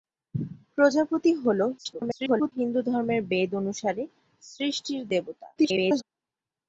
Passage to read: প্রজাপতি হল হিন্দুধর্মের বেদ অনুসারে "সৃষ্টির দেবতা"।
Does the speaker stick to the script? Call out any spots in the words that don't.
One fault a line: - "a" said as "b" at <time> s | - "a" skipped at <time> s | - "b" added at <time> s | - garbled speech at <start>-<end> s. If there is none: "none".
- garbled speech at 1.8-2.5 s
- garbled speech at 5.6-6.0 s